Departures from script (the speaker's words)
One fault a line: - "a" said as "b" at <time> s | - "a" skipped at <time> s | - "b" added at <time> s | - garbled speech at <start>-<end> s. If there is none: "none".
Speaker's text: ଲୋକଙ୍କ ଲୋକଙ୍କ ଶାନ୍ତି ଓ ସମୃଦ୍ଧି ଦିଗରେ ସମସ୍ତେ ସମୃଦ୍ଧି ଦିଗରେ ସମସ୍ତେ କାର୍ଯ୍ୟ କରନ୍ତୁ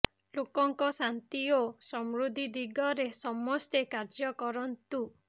- "ଲୋକଙ୍କ" skipped at 0.9 s
- "ସମୃଦ୍ଧି ଦିଗରେ ସମସ୍ତେ" skipped at 3.8 s